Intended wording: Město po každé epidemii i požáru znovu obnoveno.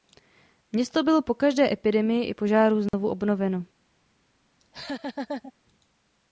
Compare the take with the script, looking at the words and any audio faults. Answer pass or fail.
fail